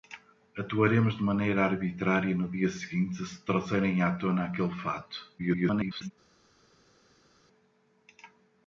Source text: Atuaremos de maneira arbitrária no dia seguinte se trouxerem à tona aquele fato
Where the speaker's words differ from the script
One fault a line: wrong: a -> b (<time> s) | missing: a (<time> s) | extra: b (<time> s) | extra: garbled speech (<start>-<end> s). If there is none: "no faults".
extra: garbled speech (5.4-6.1 s)